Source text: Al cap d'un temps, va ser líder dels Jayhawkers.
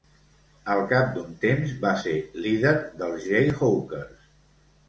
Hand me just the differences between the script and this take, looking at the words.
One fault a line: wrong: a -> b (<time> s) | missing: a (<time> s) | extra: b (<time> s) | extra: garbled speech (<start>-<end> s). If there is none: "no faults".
no faults